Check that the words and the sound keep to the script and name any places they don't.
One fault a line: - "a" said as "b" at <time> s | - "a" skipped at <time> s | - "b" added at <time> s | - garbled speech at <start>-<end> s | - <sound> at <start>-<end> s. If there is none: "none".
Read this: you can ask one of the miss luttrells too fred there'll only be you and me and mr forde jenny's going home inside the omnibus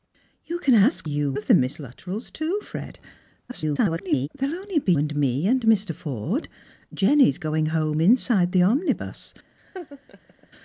- "one" said as "you" at 1.0 s
- garbled speech at 3.5-4.3 s
- "you" skipped at 4.9 s
- laugh at 9.6-10.5 s